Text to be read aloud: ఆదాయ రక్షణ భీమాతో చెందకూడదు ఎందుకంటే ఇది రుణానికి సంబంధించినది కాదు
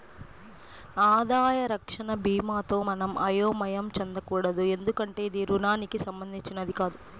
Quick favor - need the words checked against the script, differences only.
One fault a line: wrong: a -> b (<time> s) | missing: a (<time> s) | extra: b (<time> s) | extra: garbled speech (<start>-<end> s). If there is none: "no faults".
extra: మనం అయోమయం (2.8 s)